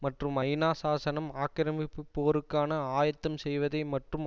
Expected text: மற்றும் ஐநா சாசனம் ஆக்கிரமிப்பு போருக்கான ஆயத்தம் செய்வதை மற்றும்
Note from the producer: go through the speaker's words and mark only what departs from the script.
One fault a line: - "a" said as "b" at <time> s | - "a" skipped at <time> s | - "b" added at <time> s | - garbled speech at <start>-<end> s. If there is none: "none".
none